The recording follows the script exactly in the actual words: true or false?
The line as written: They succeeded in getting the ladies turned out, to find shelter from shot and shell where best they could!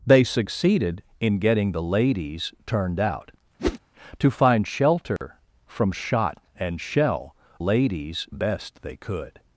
false